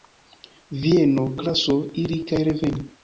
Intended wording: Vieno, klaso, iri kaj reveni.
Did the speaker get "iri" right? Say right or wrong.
right